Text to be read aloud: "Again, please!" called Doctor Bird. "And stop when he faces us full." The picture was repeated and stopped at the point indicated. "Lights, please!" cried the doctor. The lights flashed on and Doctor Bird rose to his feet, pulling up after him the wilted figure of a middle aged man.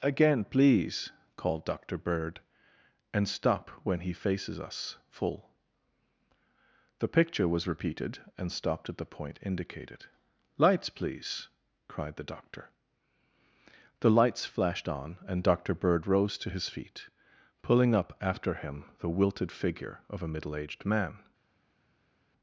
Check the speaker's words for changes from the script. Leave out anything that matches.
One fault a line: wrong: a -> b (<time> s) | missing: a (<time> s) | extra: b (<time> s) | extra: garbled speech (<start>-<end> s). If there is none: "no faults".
no faults